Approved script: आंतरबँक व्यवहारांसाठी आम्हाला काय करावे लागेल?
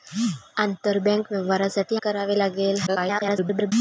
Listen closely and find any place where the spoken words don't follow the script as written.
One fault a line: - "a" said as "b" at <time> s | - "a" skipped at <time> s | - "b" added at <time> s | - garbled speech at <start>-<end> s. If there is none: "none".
- "आम्हाला काय" skipped at 1.9 s
- garbled speech at 2.9-3.7 s